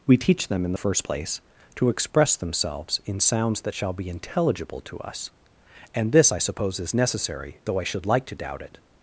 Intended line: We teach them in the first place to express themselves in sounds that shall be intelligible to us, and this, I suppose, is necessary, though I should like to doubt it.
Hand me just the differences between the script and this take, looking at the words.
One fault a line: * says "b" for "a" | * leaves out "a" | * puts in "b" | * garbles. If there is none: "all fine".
all fine